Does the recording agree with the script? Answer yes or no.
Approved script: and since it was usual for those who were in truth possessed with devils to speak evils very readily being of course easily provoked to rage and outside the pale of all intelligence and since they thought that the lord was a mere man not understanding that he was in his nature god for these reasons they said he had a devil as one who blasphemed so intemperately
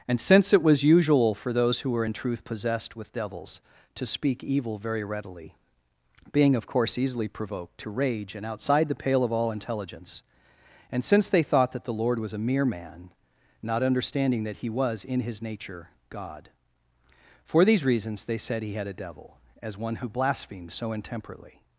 no